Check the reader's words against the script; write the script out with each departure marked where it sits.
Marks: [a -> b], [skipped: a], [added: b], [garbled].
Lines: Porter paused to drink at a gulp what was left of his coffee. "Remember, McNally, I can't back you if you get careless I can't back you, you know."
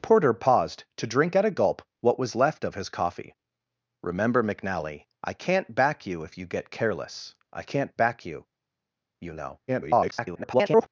Porter paused to drink at a gulp what was left of his coffee. "Remember, McNally, I can't back you if you get careless I can't back you, you know." [garbled]